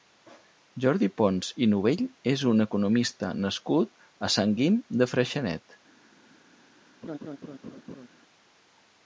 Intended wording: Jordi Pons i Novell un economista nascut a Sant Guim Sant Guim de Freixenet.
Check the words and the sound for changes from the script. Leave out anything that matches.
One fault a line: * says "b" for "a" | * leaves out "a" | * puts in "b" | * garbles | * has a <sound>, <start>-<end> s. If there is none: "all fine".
* puts in "és"
* leaves out "Sant Guim"
* has a laugh, 7.0-8.1 s